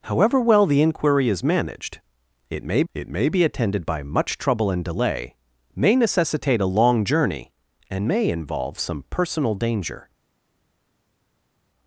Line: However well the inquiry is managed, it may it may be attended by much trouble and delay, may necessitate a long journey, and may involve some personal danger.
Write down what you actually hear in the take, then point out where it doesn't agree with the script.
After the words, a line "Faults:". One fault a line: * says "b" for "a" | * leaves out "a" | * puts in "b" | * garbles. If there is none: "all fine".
However well the inquiry is managed, it may it may be attended by much trouble and delay, may necessitate a long journey, and may involve some personal danger.
Faults:
all fine